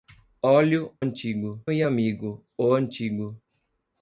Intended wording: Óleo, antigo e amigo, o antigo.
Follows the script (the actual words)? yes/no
yes